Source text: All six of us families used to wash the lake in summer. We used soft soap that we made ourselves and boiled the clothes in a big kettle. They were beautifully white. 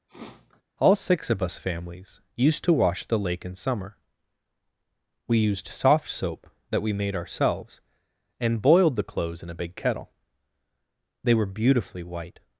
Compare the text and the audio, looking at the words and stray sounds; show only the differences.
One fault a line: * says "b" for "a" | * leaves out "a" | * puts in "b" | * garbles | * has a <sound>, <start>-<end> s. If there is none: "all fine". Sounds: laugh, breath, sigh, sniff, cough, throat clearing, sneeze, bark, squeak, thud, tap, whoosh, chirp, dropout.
* has a sniff, 0.1-0.6 s